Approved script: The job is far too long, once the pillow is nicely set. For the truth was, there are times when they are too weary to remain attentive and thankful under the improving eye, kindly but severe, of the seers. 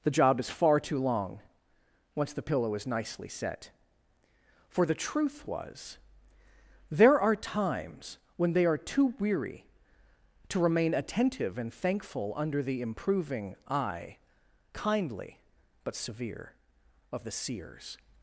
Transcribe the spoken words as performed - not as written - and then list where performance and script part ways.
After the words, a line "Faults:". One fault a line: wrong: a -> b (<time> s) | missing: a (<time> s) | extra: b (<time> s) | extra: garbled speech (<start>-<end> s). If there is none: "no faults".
The job is far too long, once the pillow is nicely set. For the truth was, there are times when they are too weary to remain attentive and thankful under the improving eye, kindly but severe, of the seers.
Faults:
no faults